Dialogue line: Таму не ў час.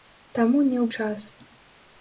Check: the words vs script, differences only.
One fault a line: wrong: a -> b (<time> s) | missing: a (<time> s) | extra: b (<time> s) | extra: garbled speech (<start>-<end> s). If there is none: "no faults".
no faults